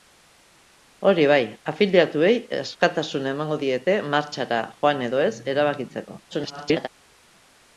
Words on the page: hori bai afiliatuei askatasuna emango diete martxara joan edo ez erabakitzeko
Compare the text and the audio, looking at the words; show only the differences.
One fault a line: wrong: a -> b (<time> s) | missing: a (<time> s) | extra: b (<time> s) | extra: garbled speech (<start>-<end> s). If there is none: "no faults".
extra: garbled speech (6.3-6.9 s)